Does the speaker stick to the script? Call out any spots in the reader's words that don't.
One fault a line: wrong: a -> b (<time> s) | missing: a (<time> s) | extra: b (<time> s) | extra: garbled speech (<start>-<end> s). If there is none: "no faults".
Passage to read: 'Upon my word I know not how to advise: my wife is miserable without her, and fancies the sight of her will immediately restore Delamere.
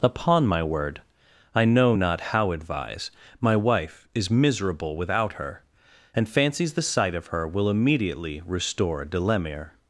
missing: to (2.5 s)